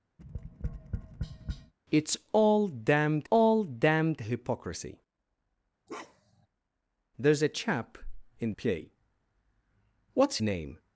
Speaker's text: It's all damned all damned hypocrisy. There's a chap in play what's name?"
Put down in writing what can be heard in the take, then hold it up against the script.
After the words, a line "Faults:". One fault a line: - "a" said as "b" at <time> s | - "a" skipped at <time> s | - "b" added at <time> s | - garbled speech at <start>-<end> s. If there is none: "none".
It's all damned all damned hypocrisy. There's a chap in play what's name?"
Faults:
none